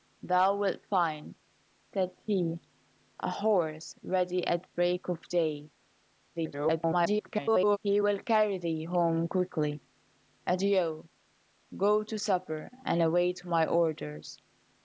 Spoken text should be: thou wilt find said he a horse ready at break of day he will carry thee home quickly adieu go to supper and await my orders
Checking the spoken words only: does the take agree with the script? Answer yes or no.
no